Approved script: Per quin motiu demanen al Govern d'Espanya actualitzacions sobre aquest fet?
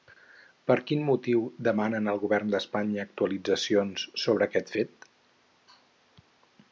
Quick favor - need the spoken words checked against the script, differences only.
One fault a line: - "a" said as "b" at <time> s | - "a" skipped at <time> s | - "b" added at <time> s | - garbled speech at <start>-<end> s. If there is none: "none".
none